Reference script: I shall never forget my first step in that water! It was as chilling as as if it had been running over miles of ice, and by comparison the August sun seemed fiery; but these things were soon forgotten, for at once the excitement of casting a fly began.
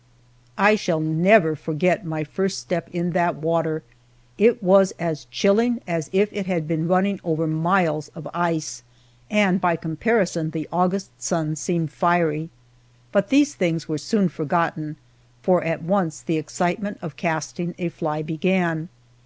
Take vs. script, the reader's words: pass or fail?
fail